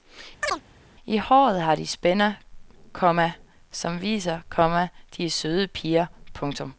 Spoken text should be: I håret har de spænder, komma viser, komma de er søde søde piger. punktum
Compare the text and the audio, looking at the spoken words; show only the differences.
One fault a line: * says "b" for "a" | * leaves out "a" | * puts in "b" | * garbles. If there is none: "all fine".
* puts in "som"
* leaves out "søde"